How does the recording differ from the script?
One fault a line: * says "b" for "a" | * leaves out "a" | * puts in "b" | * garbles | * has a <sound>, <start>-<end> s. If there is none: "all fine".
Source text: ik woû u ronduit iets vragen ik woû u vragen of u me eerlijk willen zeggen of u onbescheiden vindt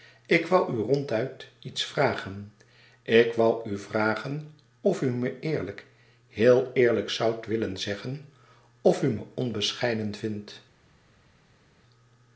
* puts in "heel eerlijk zoudt"
* puts in "me"